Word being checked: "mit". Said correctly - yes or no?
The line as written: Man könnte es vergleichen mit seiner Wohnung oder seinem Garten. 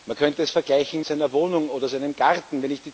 no